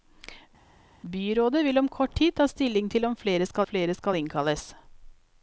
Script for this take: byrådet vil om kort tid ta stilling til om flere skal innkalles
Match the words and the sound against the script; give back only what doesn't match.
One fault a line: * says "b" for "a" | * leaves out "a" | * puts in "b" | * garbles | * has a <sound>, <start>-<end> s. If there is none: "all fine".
* puts in "flere skal"